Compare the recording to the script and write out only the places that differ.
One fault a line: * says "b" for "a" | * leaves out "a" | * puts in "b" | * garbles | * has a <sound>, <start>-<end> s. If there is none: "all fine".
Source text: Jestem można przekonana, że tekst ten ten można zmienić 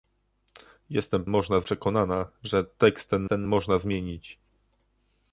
all fine